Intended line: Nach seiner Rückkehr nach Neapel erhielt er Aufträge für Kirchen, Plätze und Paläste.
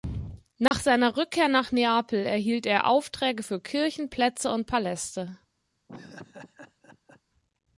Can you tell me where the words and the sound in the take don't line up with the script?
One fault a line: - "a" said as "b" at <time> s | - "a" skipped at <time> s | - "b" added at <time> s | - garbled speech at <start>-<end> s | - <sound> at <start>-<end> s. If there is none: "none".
- dropout at 0.7-0.7 s
- laugh at 5.9-7.2 s